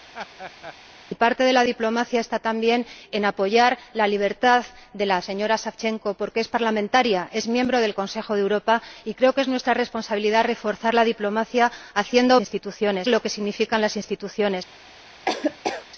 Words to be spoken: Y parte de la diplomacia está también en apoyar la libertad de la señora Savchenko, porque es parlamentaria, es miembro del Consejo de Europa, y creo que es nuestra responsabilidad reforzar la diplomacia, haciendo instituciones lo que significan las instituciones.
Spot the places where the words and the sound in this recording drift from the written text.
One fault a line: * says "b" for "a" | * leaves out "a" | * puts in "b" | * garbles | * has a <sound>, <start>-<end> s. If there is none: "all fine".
* has a laugh, 0.1-0.7 s
* has a laugh, 15.3-15.9 s